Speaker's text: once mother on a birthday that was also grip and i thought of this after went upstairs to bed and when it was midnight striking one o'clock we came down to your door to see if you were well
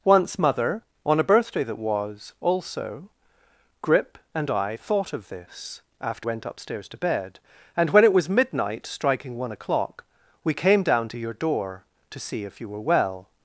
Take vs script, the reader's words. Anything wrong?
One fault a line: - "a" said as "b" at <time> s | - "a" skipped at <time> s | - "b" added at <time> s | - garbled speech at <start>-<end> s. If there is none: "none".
none